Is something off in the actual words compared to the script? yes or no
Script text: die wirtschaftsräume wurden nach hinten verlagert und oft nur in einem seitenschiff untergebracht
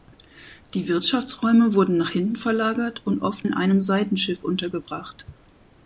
yes